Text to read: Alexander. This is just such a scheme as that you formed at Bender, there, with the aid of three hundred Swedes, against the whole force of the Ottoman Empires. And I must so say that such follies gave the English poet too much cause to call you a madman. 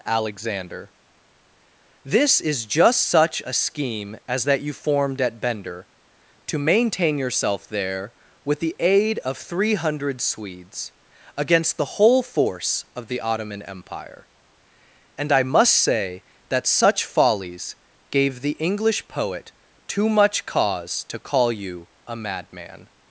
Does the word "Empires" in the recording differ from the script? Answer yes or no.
yes